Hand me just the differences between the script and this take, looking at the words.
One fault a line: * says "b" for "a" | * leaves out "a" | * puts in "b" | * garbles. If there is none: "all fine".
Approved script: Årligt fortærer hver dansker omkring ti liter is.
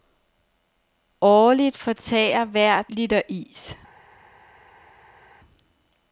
* leaves out "dansker omkring ti"